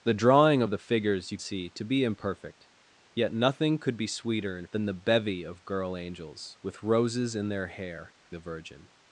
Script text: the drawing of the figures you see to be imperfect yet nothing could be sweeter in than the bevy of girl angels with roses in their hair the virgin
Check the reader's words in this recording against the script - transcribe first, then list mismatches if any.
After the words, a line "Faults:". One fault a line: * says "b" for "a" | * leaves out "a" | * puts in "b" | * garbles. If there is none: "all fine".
the drawing of the figures you see to be imperfect yet nothing could be sweeter in than the bevy of girl angels with roses in their hair the virgin
Faults:
all fine